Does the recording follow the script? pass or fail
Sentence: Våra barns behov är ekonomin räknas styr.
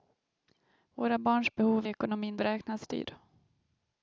pass